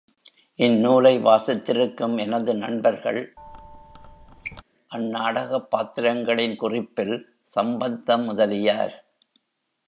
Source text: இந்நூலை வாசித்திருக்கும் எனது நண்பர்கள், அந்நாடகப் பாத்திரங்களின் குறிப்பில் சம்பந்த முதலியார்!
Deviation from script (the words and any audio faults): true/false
true